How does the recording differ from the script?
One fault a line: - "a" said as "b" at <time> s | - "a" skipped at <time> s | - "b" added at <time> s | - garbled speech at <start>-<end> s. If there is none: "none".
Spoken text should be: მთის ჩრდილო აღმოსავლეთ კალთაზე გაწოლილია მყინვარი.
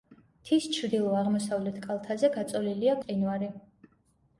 none